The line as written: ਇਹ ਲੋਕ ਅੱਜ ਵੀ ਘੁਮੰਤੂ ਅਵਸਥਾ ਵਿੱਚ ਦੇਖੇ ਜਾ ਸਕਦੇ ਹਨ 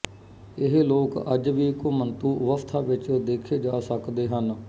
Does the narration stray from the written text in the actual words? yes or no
no